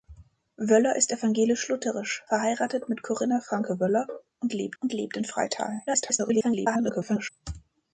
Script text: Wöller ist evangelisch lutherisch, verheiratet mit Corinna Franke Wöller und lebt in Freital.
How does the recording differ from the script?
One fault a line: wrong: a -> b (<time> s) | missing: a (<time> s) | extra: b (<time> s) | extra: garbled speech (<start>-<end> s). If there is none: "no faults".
extra: und lebt (4.8 s)
extra: garbled speech (5.9-7.3 s)